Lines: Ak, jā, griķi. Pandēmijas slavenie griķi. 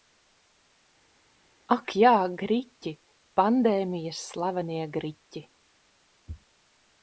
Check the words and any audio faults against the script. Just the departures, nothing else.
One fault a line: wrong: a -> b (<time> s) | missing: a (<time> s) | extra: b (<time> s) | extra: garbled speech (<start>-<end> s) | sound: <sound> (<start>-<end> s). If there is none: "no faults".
no faults